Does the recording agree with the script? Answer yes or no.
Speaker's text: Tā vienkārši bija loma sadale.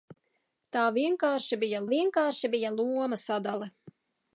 no